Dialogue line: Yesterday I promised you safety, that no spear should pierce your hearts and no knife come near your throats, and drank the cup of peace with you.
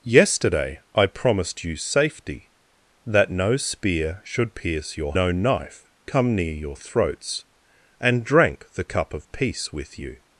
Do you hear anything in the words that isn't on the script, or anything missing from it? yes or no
yes